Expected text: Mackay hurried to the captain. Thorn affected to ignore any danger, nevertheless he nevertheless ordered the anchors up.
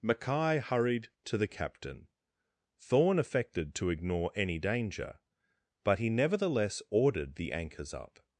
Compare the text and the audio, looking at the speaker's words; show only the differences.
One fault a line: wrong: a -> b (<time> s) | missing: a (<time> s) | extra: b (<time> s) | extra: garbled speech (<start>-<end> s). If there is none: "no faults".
wrong: nevertheless -> but (5.8 s)